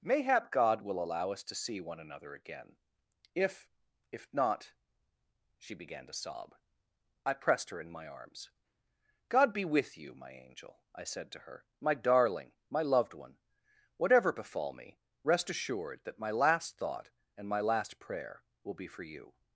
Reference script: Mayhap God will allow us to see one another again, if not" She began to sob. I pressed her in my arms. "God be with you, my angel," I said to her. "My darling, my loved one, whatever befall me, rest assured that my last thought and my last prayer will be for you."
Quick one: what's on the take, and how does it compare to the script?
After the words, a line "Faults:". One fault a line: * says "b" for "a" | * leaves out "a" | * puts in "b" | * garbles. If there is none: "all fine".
Mayhap God will allow us to see one another again, if if not" She began to sob. I pressed her in my arms. "God be with you, my angel," I said to her. "My darling, my loved one, whatever befall me, rest assured that my last thought and my last prayer will be for you."
Faults:
* puts in "if"